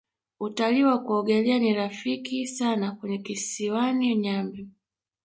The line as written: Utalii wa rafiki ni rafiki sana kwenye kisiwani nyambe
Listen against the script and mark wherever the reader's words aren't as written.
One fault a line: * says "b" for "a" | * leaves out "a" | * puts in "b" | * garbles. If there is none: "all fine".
* says "kuogelea" for "rafiki"